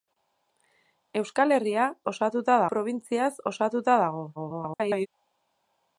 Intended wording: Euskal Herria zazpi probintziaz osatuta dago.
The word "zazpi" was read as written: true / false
false